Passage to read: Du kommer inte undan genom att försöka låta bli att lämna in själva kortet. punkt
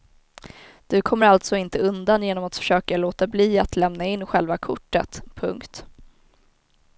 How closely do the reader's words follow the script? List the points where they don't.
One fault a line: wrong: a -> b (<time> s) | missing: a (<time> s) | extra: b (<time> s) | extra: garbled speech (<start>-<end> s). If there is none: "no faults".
extra: alltså (1.2 s)